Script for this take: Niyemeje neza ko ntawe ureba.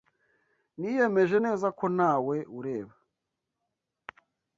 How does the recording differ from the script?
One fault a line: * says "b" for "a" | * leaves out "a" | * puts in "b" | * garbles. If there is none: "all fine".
all fine